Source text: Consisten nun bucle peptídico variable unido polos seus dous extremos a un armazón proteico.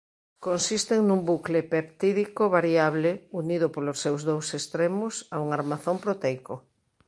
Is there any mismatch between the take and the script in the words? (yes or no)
no